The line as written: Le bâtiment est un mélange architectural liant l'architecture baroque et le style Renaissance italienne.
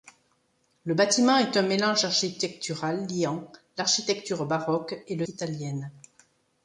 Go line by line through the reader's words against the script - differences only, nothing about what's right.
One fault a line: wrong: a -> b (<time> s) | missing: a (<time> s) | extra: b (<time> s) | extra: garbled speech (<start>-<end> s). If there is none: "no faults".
missing: style Renaissance (5.3 s)